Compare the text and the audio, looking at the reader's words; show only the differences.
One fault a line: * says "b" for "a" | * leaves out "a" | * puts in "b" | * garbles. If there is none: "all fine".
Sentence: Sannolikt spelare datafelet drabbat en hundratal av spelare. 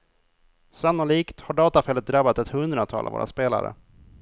* says "har" for "spelare"
* says "ett" for "en"
* puts in "våra"